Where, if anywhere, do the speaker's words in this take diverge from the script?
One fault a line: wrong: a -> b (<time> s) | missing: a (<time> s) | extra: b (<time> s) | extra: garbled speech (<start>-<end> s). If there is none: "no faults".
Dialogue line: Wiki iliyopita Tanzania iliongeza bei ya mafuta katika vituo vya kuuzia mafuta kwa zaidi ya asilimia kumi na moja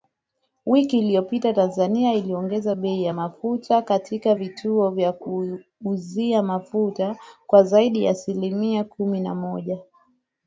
no faults